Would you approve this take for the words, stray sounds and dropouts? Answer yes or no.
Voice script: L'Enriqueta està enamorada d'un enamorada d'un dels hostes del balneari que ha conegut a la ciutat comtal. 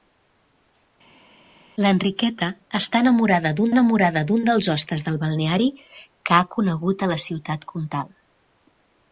yes